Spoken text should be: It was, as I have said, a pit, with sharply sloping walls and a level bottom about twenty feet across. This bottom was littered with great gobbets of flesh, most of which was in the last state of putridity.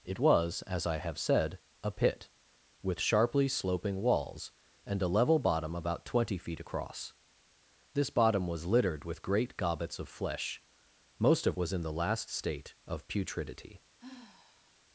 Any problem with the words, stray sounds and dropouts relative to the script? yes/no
yes